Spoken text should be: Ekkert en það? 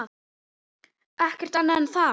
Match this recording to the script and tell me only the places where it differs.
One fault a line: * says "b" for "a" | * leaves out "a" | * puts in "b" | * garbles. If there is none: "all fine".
* puts in "annað"